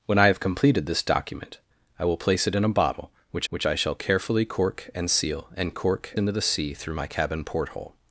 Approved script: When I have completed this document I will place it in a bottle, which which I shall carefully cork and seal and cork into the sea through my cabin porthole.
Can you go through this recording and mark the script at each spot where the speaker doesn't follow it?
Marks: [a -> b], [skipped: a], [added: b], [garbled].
When I have completed this document I will place it in a bottle, which which I shall carefully cork and seal and cork into the sea through my cabin porthole.